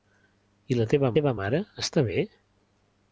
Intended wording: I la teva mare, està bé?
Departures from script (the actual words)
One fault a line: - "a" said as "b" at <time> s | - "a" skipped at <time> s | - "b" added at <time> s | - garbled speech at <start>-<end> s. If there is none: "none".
- "teva" added at 1.2 s